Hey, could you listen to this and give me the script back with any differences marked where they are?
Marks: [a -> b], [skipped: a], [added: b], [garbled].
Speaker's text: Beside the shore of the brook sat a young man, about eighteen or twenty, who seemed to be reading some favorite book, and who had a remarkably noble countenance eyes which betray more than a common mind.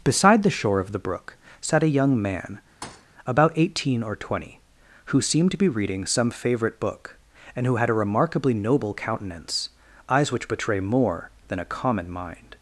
Beside the shore of the brook sat a young man, about eighteen or twenty, who seemed to be reading some favorite book, and who had a remarkably noble countenance eyes which betray more than a common mind.